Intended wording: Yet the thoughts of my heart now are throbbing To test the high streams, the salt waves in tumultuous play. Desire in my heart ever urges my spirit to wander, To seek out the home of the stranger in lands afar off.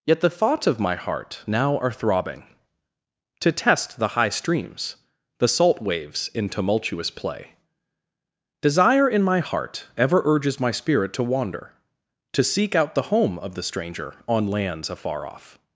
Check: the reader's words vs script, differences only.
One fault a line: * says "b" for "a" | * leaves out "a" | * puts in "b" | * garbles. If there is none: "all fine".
* says "on" for "in"